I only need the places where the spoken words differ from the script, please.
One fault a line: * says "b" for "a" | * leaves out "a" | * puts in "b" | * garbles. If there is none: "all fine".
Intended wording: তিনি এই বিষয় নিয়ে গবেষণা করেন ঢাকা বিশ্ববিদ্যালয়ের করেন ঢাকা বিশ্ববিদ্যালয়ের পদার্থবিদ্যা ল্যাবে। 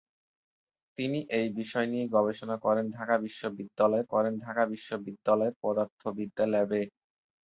all fine